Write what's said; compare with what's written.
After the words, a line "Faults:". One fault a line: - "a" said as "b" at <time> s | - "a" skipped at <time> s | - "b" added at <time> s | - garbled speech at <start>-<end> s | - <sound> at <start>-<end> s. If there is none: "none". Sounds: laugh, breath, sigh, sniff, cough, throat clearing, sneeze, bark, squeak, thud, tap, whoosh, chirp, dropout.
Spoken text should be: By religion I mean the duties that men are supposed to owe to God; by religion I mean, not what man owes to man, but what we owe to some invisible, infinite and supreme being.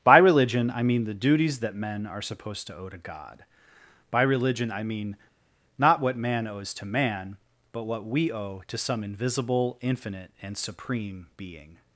By religion I mean the duties that men are supposed to owe to God; by religion I mean, not what man owes to man, but what we owe to some invisible, infinite and supreme being.
Faults:
none